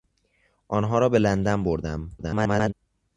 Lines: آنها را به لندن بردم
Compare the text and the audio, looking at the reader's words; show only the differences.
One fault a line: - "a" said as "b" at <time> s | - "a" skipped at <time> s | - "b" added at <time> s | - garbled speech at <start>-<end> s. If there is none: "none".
- garbled speech at 2.2-2.7 s